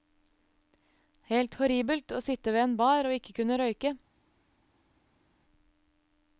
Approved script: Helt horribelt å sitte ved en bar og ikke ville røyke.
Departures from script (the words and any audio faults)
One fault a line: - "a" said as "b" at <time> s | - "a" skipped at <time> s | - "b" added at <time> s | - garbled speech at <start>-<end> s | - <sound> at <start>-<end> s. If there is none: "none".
- "ville" said as "kunne" at 3.4 s